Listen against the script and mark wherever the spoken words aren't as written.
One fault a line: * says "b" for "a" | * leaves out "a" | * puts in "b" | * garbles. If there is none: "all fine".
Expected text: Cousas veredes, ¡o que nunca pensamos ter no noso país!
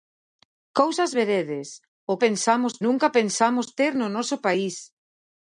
* says "pensamos" for "que"